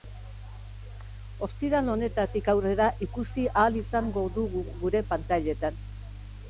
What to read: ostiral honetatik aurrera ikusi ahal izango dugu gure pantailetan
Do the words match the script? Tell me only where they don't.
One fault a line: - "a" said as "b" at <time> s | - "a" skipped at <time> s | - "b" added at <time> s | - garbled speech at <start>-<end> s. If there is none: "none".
none